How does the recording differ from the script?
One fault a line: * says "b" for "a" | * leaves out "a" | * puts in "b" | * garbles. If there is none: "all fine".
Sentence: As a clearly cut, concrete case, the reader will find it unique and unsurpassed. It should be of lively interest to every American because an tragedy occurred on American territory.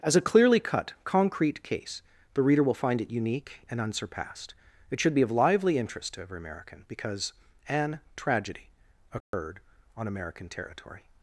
all fine